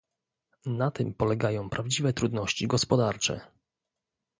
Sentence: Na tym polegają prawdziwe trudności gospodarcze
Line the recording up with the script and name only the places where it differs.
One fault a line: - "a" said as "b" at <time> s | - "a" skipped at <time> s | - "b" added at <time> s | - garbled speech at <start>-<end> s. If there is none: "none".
none